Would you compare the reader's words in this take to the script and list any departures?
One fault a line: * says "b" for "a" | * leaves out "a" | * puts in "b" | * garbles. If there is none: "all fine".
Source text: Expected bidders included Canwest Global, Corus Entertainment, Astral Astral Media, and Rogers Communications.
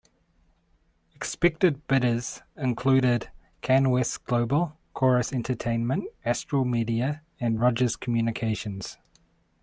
* leaves out "Astral"